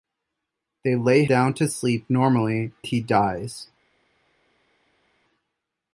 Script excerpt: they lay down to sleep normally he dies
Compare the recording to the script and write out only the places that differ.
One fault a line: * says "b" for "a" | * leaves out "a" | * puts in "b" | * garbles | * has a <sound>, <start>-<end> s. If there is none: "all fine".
all fine